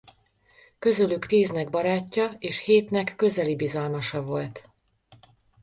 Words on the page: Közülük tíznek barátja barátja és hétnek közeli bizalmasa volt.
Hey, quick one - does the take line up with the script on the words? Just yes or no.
no